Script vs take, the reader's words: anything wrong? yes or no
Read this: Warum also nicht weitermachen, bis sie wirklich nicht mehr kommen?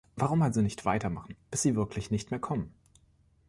no